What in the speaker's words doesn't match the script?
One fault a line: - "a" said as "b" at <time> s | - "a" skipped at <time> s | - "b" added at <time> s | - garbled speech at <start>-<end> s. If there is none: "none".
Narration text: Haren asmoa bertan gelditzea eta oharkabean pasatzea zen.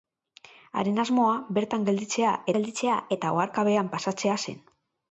- "gelditzea" added at 2.6 s